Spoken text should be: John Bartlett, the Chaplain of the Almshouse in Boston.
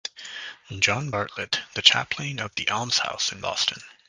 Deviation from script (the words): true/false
false